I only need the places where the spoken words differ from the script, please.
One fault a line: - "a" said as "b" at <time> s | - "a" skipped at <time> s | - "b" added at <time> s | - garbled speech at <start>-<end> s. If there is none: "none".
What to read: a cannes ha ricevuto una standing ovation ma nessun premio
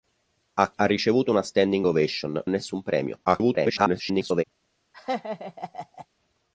- "cannes" skipped at 0.7 s
- "ma" skipped at 2.4 s
- garbled speech at 3.2-4.4 s